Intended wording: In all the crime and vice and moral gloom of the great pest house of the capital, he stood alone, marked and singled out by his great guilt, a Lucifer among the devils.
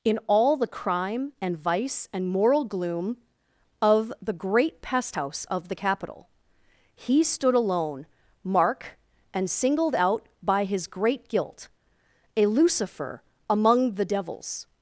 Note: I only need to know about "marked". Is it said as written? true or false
false